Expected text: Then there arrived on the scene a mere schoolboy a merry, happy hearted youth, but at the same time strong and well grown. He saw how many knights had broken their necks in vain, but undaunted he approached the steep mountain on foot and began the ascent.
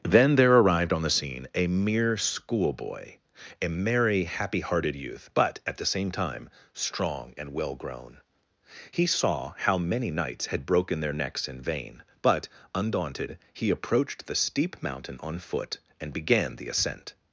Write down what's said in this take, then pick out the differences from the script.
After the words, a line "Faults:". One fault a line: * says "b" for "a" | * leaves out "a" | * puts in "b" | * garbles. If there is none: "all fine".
Then there arrived on the scene a mere schoolboy a merry, happy hearted youth, but at the same time strong and well grown. He saw how many knights had broken their necks in vain, but undaunted he approached the steep mountain on foot and began the ascent.
Faults:
all fine